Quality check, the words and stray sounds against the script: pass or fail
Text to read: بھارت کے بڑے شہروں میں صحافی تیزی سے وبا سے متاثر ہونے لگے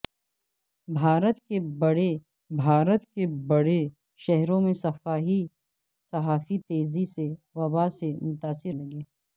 fail